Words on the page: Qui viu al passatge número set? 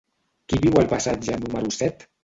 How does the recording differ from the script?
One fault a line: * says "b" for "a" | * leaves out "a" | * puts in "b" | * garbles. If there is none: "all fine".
all fine